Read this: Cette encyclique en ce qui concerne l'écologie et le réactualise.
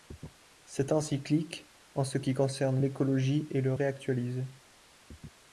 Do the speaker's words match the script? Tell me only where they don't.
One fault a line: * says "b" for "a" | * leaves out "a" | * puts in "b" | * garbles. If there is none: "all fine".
all fine